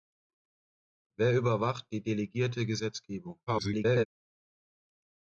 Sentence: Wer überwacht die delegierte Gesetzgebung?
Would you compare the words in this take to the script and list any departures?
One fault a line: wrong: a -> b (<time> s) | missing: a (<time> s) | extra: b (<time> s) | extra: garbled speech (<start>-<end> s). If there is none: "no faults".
extra: garbled speech (3.5-4.1 s)